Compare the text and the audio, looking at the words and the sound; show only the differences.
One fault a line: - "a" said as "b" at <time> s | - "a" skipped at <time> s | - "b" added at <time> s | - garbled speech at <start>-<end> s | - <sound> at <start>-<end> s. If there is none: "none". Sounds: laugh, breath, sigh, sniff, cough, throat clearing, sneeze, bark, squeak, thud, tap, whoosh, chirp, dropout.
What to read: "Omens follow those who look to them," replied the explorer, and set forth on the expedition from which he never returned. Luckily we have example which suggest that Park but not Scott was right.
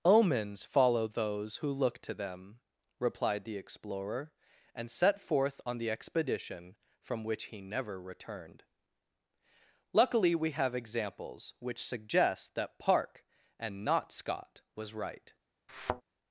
- "example" said as "examples" at 10.7 s
- "but" said as "and" at 13.6 s
- thud at 15.7-16.0 s